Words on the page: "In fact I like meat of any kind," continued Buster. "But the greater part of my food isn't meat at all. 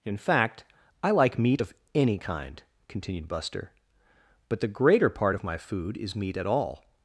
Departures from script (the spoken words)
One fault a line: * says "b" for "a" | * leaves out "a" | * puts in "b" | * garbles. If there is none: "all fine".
* says "is" for "isn't"